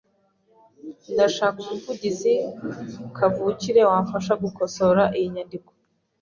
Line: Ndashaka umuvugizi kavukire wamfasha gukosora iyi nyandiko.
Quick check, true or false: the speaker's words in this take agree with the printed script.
true